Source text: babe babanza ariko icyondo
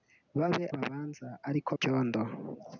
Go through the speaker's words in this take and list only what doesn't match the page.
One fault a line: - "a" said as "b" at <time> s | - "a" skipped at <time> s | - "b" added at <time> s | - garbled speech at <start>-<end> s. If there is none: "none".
none